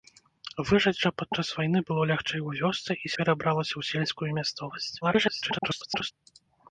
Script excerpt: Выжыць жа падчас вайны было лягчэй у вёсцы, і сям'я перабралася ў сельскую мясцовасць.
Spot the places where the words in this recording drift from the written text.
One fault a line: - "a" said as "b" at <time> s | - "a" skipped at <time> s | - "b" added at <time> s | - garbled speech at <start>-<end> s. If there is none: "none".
- "сям'я" skipped at 3.1 s
- garbled speech at 5.0-6.1 s